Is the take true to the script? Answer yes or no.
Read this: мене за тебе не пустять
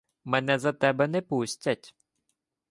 yes